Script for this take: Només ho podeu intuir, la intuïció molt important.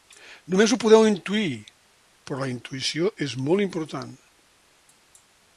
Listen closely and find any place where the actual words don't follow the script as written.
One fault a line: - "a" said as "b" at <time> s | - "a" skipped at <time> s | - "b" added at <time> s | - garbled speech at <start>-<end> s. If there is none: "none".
- "però" added at 2.3 s
- "és" added at 3.3 s